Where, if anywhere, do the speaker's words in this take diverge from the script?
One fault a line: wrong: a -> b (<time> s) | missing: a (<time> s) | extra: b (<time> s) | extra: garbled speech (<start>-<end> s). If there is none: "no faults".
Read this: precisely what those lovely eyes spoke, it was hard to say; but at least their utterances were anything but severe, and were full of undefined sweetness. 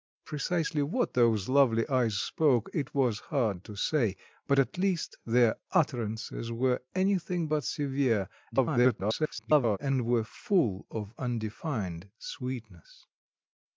extra: garbled speech (8.5-9.8 s)